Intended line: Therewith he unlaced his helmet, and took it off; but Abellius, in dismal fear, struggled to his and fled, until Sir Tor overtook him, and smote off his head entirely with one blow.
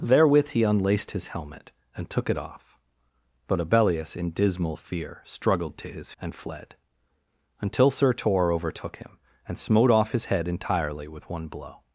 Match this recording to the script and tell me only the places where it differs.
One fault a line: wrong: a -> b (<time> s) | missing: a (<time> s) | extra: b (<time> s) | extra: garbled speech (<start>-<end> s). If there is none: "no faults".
no faults